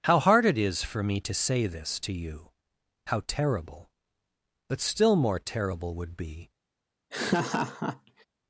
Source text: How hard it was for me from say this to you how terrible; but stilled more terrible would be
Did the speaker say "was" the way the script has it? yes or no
no